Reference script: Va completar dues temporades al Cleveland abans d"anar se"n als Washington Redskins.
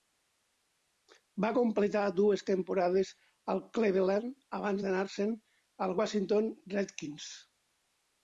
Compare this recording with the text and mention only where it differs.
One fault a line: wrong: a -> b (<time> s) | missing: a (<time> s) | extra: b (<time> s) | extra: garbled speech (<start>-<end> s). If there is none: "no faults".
no faults